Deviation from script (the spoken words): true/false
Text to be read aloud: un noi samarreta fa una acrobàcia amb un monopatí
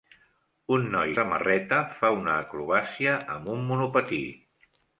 false